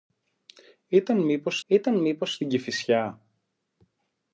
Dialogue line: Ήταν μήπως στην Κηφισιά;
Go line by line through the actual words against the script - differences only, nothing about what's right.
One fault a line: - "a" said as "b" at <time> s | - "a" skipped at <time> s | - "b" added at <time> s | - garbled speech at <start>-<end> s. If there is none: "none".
- "ήταν μήπως" added at 1.7 s